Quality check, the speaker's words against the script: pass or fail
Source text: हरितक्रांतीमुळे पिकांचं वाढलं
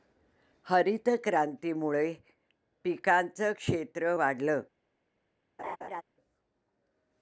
fail